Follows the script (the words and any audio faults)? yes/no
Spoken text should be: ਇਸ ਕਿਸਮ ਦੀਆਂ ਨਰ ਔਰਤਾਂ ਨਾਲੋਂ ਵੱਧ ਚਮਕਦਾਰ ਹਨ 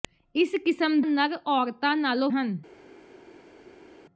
no